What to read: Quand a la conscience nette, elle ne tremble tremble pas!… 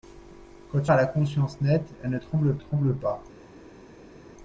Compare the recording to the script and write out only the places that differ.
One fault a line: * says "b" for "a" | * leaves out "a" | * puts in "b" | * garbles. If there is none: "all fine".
all fine